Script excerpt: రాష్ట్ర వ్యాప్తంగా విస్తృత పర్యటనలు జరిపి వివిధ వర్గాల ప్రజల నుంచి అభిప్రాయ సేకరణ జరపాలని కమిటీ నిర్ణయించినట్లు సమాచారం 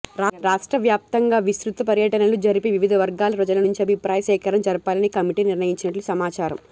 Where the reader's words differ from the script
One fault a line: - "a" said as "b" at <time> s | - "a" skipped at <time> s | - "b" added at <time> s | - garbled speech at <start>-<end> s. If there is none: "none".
none